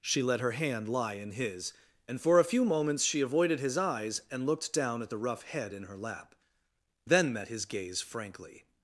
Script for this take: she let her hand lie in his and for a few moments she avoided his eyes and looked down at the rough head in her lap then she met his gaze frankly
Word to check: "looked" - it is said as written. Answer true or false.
true